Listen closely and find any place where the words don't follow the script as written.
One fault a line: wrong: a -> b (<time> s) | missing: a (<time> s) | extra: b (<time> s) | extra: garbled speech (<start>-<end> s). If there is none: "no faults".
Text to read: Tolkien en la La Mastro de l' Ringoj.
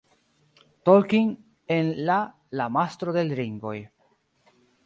no faults